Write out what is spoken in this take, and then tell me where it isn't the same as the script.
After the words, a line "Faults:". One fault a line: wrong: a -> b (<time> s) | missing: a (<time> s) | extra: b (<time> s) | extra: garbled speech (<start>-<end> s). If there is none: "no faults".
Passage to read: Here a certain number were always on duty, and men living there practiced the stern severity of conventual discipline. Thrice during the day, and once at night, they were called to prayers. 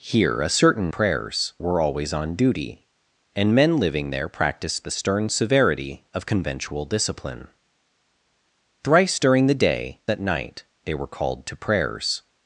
Here a certain prayers were always on duty, and men living there practiced the stern severity of conventual discipline. Thrice during the day, at night, they were called to prayers.
Faults:
wrong: number -> prayers (0.9 s)
missing: and once (10.0 s)